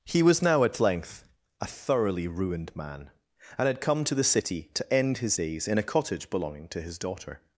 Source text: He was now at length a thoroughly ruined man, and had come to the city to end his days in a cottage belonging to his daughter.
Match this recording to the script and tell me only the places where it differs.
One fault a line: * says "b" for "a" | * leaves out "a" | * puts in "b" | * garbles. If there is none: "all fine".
all fine